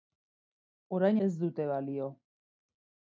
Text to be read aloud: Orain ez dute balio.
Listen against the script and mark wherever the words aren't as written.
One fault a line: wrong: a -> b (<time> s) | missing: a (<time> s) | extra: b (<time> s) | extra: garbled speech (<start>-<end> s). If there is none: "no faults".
no faults